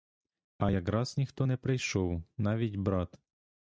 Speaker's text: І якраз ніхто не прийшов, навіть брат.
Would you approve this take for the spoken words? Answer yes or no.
no